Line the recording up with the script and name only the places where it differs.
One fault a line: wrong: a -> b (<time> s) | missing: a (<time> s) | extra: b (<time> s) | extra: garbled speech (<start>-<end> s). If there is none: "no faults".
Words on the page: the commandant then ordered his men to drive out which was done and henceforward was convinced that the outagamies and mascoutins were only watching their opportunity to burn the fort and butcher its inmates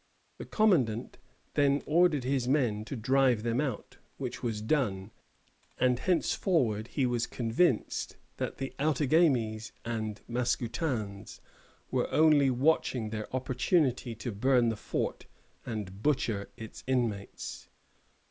extra: them (3.4 s)
extra: he (6.9 s)